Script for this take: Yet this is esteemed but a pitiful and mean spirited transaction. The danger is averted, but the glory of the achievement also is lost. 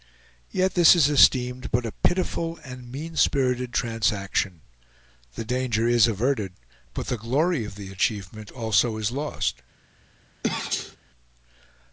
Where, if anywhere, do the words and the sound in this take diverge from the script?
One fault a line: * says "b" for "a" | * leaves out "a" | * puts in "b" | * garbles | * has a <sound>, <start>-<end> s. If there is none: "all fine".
* has a sneeze, 10.4-11.0 s